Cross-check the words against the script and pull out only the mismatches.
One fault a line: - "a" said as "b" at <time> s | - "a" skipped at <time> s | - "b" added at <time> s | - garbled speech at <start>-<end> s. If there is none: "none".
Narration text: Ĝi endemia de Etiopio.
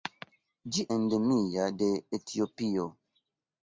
none